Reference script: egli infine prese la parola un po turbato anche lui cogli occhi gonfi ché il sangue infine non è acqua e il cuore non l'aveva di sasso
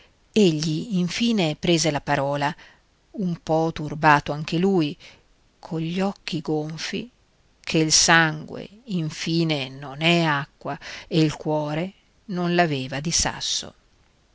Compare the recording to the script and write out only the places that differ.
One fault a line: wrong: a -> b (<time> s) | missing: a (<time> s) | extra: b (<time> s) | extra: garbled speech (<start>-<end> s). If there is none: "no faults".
no faults